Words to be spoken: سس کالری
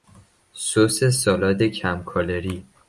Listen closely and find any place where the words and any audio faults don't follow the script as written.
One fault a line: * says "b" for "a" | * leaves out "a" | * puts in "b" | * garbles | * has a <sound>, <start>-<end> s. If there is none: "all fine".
* puts in "سالاد کم"